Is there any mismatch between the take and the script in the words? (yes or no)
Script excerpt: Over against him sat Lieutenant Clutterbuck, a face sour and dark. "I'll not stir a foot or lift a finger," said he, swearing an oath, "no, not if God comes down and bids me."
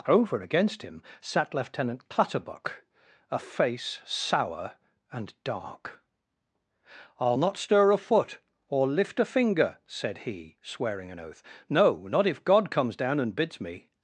no